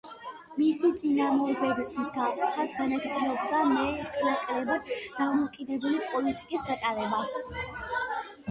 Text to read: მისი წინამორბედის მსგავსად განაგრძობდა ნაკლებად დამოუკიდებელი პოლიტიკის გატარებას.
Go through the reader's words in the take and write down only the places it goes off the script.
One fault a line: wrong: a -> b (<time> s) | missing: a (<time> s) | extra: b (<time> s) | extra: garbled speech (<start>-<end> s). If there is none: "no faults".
extra: მეტ (3.7 s)